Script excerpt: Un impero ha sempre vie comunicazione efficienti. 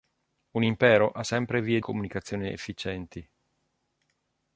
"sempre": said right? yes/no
yes